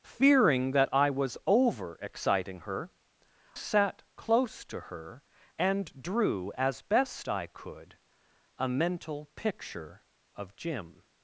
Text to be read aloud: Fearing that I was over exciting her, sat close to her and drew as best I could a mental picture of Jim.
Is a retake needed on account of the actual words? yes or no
no